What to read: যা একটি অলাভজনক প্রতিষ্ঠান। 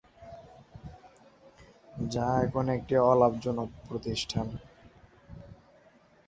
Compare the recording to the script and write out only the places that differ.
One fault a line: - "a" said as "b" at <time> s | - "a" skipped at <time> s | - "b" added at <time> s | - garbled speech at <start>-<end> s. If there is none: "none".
- "এখন" added at 2.5 s